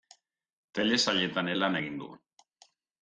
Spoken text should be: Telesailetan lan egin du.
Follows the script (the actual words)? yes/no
yes